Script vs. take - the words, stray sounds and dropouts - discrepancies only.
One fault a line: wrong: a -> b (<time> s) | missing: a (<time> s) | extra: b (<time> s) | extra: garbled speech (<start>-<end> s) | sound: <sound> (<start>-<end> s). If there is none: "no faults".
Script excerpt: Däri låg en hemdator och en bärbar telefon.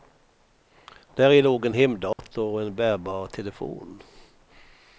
sound: dropout (2.1-2.2 s)